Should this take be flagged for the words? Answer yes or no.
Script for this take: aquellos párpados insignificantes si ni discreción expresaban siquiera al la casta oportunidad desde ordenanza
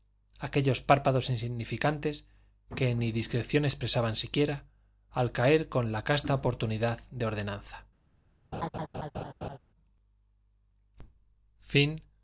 yes